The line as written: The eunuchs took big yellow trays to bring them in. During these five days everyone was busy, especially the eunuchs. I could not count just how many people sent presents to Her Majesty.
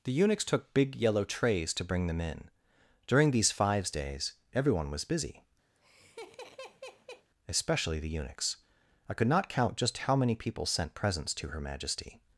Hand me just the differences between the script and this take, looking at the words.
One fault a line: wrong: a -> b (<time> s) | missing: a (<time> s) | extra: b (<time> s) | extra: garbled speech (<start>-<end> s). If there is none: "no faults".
wrong: five -> fives (3.5 s)